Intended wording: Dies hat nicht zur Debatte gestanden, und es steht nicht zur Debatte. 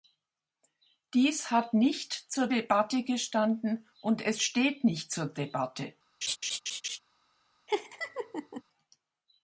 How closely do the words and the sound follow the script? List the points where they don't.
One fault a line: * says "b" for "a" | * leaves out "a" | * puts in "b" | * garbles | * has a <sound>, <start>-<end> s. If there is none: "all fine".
* has a laugh, 6.2-7.0 s
* has a laugh, 7.7-8.6 s